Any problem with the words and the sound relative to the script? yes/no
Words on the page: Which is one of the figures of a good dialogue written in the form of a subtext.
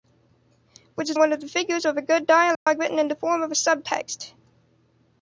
yes